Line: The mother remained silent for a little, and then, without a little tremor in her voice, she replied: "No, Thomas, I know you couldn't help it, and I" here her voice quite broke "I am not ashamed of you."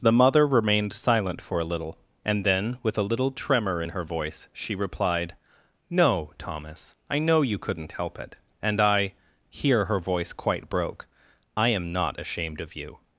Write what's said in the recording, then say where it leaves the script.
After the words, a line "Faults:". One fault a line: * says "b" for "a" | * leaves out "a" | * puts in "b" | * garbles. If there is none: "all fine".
The mother remained silent for a little, and then, with a little tremor in her voice, she replied: "No, Thomas, I know you couldn't help it, and I" here her voice quite broke "I am not ashamed of you."
Faults:
* says "with" for "without"